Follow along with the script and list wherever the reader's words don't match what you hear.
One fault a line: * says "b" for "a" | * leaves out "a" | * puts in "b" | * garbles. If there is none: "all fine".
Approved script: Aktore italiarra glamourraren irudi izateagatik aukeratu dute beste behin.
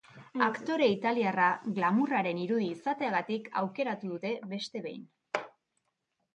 all fine